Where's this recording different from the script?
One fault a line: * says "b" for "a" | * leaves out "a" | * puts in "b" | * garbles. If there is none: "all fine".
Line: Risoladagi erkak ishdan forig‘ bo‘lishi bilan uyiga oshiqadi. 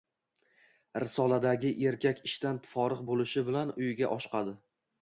all fine